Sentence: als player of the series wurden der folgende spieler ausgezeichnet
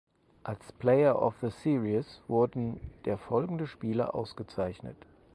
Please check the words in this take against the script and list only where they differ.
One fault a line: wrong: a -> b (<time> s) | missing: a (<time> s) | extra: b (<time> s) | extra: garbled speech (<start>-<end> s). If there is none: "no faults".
no faults